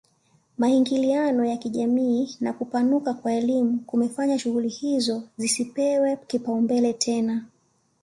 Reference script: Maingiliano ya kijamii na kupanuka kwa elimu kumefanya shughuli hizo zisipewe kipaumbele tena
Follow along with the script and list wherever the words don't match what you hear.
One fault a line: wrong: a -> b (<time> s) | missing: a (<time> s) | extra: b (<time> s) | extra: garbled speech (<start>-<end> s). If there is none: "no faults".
no faults